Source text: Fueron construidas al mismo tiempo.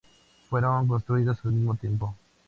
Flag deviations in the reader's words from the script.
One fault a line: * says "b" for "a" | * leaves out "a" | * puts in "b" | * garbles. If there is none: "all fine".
all fine